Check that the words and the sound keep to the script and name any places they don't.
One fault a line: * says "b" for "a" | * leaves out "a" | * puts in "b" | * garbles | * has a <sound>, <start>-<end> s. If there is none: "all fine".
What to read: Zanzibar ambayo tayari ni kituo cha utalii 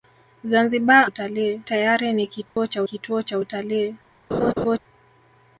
* says "utalii" for "ambayo"
* has a dropout, 2.5-2.6 s
* puts in "kituo cha"
* has a laugh, 4.3-4.8 s